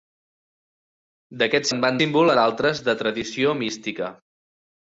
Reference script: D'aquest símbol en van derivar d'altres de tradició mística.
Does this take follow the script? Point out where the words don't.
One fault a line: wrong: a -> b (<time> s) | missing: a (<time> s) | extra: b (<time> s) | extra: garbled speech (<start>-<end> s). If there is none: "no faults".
missing: símbol (1.7 s)
wrong: derivar -> símbol (2.0 s)